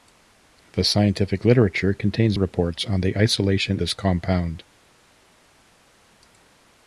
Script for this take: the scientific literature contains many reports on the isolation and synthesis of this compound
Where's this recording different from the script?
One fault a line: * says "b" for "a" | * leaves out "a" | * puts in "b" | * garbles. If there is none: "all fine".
* leaves out "many"
* leaves out "and synthesis of"